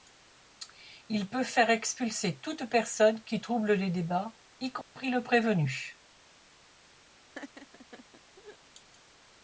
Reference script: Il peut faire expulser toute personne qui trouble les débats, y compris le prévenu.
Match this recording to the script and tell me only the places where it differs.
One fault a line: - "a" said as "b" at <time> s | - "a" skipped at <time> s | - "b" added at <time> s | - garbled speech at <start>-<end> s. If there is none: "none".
none